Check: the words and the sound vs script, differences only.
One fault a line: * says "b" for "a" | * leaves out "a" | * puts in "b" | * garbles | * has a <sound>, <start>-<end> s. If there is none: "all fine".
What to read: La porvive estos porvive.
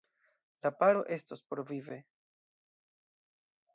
* says "paro" for "porvive"